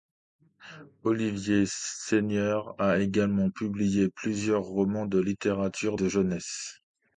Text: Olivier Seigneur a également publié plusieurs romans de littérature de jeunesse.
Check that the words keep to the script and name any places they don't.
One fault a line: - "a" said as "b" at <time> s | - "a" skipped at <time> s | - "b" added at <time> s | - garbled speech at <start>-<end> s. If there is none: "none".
none